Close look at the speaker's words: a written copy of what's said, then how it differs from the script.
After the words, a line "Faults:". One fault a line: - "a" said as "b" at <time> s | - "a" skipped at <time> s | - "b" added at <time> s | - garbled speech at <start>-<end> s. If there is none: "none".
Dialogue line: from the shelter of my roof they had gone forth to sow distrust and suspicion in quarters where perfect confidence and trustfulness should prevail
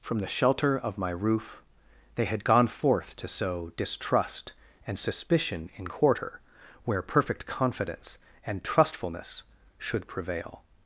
from the shelter of my roof they had gone forth to sow distrust and suspicion in quarter where perfect confidence and trustfulness should prevail
Faults:
- "quarters" said as "quarter" at 5.9 s